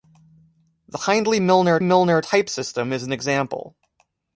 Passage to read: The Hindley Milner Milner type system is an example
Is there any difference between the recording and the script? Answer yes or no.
no